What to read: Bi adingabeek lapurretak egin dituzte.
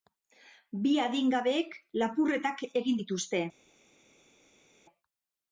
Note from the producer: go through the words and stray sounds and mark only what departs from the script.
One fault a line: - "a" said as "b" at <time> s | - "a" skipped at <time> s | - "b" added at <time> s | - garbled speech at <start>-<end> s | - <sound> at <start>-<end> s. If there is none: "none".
none